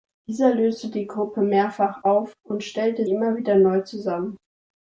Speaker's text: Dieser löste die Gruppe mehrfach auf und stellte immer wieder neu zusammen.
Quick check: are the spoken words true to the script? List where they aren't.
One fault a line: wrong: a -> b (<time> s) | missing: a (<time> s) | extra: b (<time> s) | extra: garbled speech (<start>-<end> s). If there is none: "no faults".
no faults